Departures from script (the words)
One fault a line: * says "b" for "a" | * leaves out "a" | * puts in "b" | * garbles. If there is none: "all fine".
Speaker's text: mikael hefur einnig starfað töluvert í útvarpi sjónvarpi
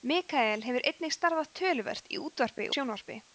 all fine